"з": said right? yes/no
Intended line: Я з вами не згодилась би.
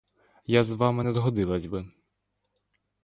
yes